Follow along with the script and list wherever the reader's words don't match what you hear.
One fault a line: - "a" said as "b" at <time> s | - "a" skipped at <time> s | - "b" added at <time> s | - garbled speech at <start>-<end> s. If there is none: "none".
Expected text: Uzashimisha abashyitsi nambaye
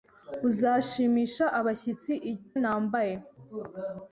none